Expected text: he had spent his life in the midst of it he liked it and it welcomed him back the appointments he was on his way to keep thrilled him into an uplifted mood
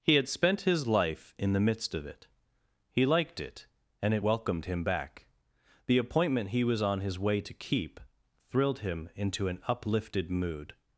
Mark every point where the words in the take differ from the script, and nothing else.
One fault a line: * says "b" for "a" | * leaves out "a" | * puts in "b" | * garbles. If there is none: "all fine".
* says "appointment" for "appointments"